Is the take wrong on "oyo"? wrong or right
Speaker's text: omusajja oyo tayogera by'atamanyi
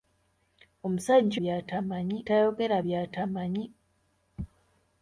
wrong